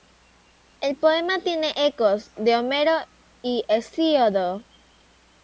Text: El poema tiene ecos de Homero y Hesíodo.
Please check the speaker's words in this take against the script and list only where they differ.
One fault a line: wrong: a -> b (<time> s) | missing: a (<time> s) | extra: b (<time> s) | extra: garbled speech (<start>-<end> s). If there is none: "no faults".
no faults